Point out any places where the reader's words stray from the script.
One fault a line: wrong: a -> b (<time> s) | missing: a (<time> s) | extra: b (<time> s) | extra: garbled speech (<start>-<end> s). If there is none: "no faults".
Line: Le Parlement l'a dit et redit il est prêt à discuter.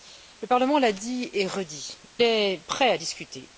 missing: il (2.0 s)